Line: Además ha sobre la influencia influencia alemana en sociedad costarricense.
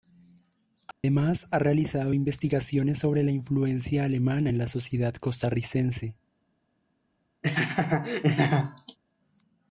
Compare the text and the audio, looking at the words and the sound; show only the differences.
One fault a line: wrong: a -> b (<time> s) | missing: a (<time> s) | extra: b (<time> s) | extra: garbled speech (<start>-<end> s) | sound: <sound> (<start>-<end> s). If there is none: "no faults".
sound: dropout (0.9-1.0 s)
extra: realizado investigaciones (1.6 s)
missing: influencia (4.1 s)
extra: la (4.6 s)
sound: laugh (7.4-9.0 s)